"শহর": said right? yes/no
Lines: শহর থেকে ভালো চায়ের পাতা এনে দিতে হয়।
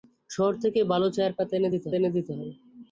yes